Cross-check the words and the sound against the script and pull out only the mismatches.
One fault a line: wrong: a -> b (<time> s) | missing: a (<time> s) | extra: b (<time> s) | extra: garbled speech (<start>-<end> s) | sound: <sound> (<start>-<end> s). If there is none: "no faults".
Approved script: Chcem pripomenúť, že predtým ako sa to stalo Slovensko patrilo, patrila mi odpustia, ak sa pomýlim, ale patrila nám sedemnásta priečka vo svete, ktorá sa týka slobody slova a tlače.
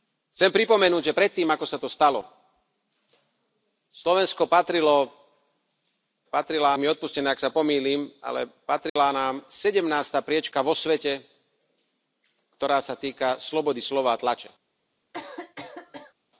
sound: dropout (8.9-9.0 s)
sound: cough (15.1-16.1 s)